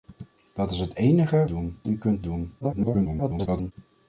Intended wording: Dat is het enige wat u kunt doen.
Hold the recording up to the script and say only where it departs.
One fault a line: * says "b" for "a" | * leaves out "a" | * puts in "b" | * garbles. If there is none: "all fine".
* says "doen" for "wat"
* garbles